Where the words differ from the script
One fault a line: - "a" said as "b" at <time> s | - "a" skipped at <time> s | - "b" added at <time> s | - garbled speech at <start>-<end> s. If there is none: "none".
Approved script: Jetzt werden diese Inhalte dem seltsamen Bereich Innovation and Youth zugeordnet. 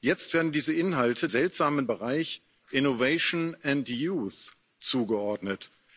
- "dem" skipped at 1.3 s